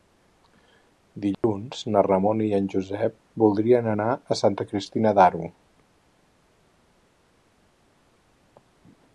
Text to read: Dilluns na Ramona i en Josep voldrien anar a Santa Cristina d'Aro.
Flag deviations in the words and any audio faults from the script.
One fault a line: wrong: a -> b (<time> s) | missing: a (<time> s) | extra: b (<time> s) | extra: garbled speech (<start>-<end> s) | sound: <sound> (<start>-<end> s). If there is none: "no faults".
sound: dropout (1.3-1.4 s)